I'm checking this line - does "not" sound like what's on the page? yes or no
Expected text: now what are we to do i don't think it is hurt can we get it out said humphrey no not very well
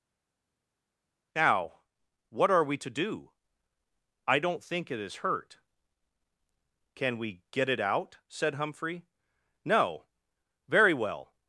no